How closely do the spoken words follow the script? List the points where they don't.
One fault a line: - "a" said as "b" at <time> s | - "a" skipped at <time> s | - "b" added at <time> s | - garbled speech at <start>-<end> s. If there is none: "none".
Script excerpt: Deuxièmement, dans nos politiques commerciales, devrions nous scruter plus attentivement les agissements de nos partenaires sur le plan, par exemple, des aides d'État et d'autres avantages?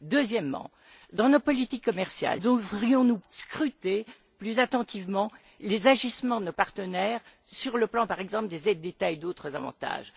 none